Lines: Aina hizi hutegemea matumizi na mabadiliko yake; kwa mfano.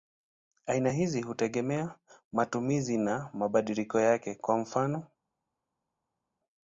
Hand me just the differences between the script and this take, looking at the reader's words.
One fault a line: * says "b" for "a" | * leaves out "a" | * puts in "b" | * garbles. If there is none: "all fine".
all fine